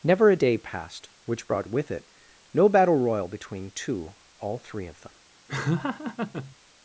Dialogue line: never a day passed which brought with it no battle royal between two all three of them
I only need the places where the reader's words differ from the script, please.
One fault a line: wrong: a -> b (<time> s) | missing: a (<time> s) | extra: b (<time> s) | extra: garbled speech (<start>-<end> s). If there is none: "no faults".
no faults